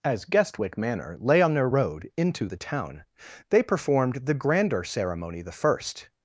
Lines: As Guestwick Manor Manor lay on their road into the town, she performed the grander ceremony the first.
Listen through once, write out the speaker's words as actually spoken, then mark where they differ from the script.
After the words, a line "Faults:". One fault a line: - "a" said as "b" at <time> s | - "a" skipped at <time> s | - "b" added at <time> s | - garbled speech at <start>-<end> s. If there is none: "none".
As Guestwick Manor lay on their road into the town, they performed the grander ceremony the first.
Faults:
- "Manor" skipped at 1.1 s
- "she" said as "they" at 3.5 s